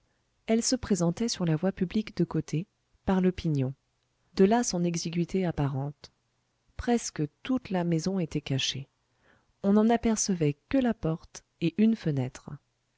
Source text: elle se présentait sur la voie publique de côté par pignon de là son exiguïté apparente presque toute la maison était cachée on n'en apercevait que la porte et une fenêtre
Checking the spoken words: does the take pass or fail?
fail